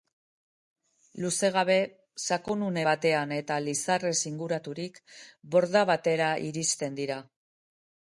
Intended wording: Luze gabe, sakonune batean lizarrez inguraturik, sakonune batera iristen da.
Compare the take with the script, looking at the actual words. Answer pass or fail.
fail